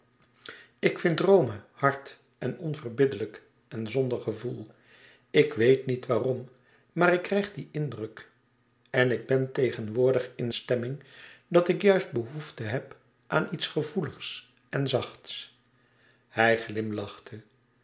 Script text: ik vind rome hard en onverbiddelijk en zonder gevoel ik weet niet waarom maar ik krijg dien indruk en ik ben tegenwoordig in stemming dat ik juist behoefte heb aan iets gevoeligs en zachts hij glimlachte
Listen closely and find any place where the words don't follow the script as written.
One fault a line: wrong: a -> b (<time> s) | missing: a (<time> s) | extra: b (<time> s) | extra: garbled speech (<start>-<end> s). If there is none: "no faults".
no faults